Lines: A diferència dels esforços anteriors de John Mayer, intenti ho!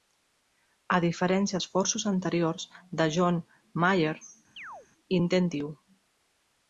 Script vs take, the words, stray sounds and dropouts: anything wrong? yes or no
yes